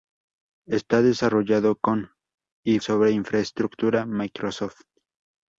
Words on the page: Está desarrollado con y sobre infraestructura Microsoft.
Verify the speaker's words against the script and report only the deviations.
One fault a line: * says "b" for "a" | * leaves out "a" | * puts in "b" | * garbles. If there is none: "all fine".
all fine